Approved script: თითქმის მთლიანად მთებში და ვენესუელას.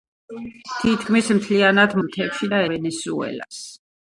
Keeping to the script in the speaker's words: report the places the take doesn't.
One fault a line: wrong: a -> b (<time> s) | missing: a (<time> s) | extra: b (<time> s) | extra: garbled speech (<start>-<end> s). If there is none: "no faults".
no faults